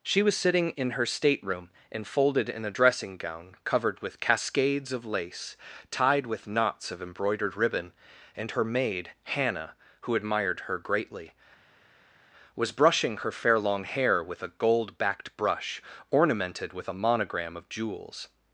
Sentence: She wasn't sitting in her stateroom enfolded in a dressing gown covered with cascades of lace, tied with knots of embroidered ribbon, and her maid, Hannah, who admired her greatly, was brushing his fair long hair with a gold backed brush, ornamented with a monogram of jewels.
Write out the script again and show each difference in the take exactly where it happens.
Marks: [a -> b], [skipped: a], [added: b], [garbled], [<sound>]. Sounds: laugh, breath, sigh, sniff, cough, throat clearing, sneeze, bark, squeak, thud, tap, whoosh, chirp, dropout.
She [wasn't -> was] sitting in her stateroom enfolded in a dressing gown covered with cascades of lace, tied with knots of embroidered ribbon, and her maid, Hannah, who admired her greatly, was brushing [his -> her] fair long hair with a gold backed brush, ornamented with a monogram of jewels.